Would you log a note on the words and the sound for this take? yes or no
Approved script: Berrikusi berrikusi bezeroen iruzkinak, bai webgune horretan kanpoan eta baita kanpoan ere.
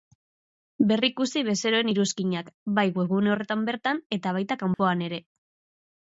yes